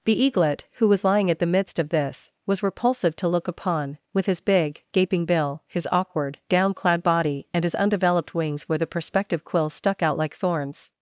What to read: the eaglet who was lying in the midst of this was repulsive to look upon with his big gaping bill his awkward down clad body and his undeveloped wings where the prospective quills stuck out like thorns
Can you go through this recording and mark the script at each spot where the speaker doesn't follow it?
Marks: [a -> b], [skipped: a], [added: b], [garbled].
the eaglet who was lying [in -> at] the midst of this was repulsive to look upon with his big gaping bill his awkward down clad body and his undeveloped wings where the prospective quills stuck out like thorns